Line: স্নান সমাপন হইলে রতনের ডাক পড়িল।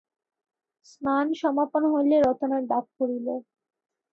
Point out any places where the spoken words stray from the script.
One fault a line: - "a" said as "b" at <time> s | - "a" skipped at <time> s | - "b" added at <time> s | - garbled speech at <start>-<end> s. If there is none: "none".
none